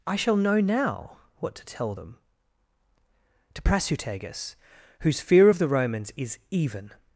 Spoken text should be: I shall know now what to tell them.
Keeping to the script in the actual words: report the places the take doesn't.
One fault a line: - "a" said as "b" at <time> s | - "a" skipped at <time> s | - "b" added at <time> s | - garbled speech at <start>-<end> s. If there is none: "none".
- "To Prasutagus whose fear of the Romans is even" added at 3.5 s